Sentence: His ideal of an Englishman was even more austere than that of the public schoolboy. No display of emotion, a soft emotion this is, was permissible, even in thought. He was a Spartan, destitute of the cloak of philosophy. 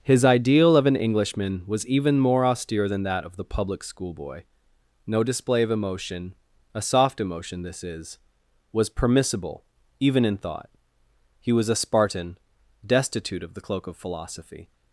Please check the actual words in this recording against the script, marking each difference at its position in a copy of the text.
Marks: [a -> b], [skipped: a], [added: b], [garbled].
His ideal of an Englishman was even more austere than that of the public schoolboy. No display of emotion, a soft emotion this is, was permissible, even in thought. He was a Spartan, destitute of the cloak of philosophy.